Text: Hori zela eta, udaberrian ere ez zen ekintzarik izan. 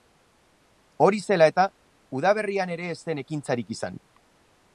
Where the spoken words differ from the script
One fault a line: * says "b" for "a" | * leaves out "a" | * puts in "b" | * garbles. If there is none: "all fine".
all fine